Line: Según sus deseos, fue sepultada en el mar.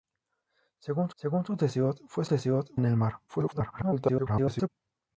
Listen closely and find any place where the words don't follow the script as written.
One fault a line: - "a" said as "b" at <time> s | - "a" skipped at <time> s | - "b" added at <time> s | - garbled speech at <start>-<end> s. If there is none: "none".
- "según" added at 1.1 s
- "sepultada" said as "deseos" at 2.3 s
- garbled speech at 3.3-4.7 s